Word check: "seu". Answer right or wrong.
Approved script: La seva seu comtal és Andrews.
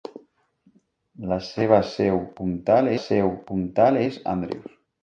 right